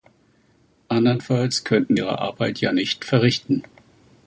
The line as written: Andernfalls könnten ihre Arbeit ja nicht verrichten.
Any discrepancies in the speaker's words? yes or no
no